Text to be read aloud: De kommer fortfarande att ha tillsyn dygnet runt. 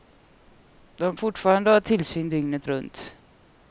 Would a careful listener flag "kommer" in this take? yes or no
yes